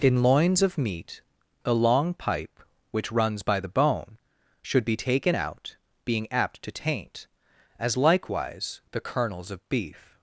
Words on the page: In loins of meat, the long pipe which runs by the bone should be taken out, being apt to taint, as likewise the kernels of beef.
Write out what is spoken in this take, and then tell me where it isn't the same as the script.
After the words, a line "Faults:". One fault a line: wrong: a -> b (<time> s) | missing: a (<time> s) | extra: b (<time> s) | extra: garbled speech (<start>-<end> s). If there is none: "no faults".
In loins of meat, a long pipe which runs by the bone should be taken out, being apt to taint, as likewise the kernels of beef.
Faults:
wrong: the -> a (1.6 s)